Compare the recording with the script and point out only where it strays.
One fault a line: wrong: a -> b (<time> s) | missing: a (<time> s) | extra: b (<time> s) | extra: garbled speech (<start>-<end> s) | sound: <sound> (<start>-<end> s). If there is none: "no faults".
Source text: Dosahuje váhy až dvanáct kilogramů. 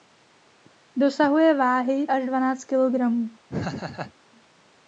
sound: laugh (3.5-4.1 s)